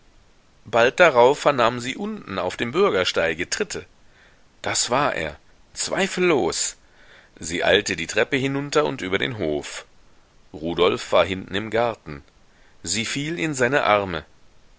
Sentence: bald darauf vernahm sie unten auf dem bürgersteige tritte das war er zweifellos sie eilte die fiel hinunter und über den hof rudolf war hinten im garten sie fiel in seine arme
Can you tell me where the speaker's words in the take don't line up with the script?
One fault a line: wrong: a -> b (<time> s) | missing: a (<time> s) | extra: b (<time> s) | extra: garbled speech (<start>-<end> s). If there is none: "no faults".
wrong: fiel -> treppe (8.1 s)